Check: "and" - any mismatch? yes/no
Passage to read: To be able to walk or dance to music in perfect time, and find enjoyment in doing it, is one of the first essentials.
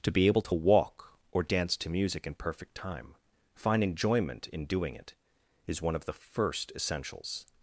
yes